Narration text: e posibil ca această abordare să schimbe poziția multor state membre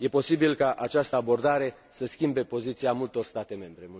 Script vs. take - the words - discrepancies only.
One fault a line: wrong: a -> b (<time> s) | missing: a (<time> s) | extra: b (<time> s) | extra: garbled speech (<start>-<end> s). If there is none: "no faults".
no faults